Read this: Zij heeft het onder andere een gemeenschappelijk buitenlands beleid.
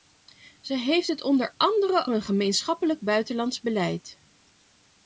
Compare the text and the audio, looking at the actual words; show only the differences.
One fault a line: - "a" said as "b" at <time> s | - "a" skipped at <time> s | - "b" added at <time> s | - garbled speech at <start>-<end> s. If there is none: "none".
none